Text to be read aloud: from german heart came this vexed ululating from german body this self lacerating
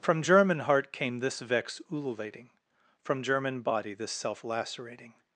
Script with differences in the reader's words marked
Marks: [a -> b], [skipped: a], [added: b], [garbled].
from german heart came this [vexed -> vex] ululating from german body this self lacerating